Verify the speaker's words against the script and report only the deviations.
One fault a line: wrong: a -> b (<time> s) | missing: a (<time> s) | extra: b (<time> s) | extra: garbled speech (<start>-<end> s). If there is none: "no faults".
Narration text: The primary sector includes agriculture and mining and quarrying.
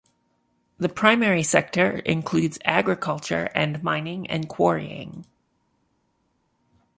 no faults